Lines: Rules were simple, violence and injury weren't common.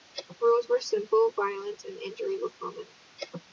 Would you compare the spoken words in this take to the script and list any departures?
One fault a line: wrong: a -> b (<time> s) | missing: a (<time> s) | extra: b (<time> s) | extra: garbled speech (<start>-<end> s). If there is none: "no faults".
wrong: weren't -> were (2.4 s)